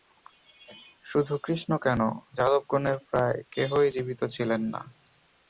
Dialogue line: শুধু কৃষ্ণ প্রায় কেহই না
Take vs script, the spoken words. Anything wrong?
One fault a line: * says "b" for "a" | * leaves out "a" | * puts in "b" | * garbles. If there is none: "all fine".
* puts in "কেন যাদবগণের"
* puts in "জীবিত ছিলেন"